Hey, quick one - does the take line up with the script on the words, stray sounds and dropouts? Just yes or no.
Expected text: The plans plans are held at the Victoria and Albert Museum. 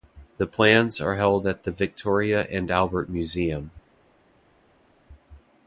no